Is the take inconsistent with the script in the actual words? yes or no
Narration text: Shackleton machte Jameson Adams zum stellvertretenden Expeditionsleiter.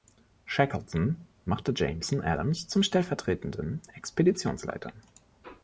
no